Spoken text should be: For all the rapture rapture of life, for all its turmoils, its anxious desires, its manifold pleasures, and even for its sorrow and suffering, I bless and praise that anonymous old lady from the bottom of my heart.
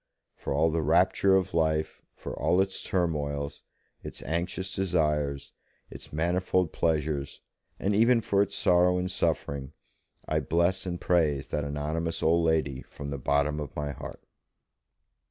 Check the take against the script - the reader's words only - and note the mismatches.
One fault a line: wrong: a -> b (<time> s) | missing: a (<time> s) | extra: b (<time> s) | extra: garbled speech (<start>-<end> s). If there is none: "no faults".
missing: rapture (1.4 s)